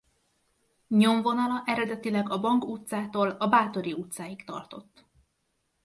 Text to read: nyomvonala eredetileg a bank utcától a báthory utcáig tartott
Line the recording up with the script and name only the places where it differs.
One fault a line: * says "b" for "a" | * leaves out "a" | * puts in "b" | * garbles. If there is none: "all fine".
all fine